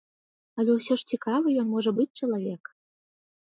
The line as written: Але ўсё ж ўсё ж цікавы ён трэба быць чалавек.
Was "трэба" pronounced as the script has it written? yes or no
no